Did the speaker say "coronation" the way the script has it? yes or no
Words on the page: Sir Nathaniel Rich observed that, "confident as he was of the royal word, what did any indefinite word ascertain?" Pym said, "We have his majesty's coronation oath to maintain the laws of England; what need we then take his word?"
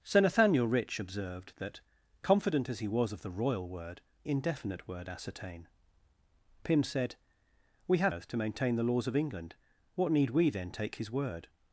no